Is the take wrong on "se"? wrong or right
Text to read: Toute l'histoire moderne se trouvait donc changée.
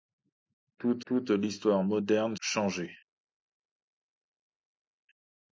wrong